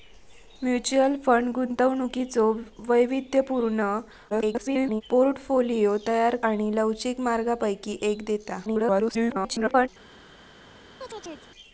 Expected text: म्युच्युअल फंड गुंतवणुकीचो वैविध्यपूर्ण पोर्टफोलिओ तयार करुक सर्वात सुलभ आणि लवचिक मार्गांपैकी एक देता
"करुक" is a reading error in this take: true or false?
true